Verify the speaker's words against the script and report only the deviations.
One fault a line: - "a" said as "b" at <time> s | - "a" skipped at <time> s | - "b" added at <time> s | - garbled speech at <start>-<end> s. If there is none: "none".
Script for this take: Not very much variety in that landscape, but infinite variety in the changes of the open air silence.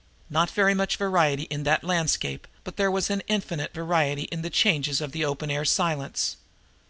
- "there was an" added at 2.8 s